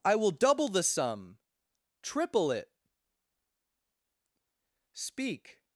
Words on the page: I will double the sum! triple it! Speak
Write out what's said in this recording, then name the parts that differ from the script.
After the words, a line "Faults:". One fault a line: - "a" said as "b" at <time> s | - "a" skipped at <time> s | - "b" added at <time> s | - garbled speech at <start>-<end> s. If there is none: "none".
I will double the sum! triple it! Speak
Faults:
none